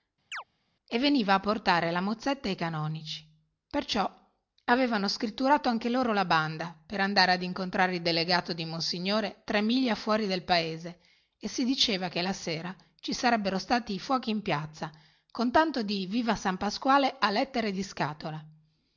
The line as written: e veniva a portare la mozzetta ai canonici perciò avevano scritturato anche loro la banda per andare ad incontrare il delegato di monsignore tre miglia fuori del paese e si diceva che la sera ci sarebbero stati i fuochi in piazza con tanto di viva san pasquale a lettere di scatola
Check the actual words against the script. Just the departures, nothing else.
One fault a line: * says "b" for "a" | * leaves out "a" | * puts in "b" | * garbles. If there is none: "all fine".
all fine